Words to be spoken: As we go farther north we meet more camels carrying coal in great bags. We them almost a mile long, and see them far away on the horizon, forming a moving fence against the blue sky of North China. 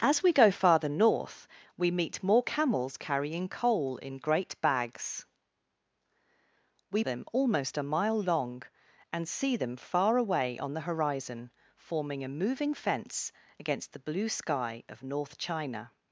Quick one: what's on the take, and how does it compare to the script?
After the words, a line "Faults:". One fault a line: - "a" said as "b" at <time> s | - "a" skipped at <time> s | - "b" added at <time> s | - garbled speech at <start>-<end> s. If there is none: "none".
As we go farther north we meet more camels carrying coal in great bags. We them almost a mile long, and see them far away on the horizon, forming a moving fence against the blue sky of North China.
Faults:
none